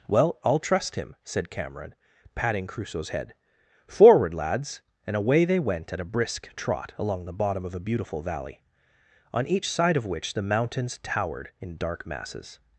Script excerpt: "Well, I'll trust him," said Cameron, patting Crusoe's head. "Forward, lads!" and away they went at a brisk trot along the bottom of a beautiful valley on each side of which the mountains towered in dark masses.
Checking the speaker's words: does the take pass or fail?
pass